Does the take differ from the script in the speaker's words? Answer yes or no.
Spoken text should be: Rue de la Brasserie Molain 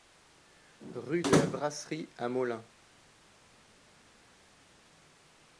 yes